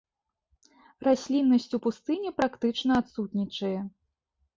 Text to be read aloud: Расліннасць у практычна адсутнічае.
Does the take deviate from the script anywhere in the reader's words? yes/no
yes